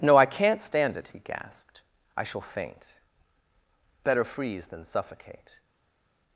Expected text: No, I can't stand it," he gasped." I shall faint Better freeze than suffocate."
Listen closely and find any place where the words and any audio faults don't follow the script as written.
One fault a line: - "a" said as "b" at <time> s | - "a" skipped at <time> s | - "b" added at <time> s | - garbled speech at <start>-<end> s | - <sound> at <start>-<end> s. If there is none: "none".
none